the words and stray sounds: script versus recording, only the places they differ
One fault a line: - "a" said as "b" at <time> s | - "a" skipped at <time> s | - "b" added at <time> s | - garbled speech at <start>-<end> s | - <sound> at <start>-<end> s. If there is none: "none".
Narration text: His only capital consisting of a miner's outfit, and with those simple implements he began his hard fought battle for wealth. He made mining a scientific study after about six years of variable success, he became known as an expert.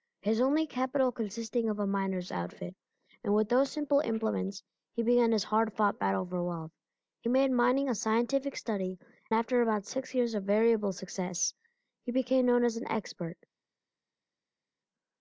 none